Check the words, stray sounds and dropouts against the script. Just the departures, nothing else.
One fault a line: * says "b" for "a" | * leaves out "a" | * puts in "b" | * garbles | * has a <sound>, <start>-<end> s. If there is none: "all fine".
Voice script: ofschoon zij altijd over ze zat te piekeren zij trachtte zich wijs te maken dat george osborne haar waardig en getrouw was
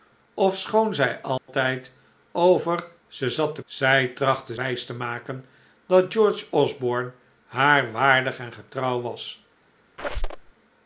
* has a dropout, 1.4-1.5 s
* leaves out "piekeren"
* leaves out "zich"
* has a squeak, 10.0-10.5 s